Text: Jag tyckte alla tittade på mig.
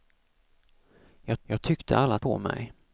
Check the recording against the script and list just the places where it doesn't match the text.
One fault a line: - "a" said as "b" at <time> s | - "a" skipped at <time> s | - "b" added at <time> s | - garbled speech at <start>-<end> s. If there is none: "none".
- "jag" added at 1.4 s
- "tittade" skipped at 2.2 s